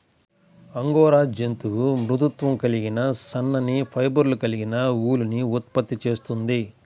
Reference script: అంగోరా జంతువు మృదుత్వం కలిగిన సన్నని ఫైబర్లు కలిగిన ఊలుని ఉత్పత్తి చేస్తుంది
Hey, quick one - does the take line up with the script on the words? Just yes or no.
yes